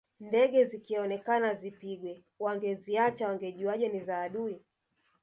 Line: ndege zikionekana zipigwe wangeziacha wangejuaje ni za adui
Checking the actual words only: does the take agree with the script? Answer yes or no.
yes